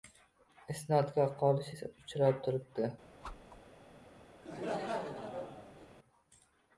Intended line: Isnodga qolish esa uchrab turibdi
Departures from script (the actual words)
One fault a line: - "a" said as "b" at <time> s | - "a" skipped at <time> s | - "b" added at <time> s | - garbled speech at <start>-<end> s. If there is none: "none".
none